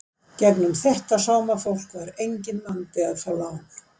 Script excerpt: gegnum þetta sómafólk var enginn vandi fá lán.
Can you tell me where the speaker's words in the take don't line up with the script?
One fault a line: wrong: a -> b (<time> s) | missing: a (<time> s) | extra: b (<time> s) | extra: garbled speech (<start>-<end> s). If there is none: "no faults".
extra: að (3.1 s)